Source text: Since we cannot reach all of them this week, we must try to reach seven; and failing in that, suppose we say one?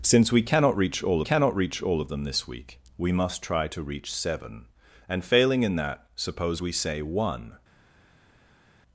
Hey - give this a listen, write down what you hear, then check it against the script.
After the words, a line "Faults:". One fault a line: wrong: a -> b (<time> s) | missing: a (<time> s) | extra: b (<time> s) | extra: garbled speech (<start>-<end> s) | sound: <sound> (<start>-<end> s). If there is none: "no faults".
Since we cannot reach all cannot reach all of them this week, we must try to reach seven; and failing in that, suppose we say one?
Faults:
extra: cannot reach all (1.2 s)